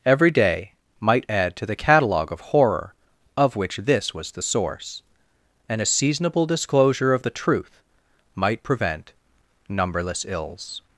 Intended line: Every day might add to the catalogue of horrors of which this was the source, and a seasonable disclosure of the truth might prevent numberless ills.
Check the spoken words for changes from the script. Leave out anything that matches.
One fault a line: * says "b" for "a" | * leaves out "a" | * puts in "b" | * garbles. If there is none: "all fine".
* says "horror" for "horrors"